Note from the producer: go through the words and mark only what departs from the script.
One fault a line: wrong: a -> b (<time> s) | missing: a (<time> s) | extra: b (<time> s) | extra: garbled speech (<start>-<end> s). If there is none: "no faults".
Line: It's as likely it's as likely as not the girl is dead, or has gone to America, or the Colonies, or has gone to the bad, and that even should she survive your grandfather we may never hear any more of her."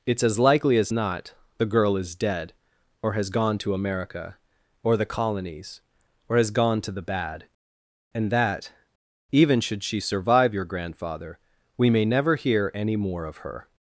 missing: it's as likely (0.8 s)